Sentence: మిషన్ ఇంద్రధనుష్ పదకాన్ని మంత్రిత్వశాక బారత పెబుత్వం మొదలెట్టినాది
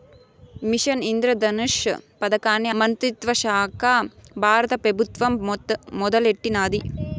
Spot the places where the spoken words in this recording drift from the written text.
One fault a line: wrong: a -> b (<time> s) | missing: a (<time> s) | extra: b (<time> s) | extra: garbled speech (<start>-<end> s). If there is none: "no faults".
no faults